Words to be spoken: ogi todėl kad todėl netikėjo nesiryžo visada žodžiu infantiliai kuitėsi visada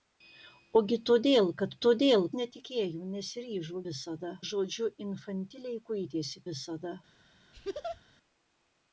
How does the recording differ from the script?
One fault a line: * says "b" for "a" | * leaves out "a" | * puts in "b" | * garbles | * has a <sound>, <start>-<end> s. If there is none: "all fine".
* has a laugh, 7.5-8.0 s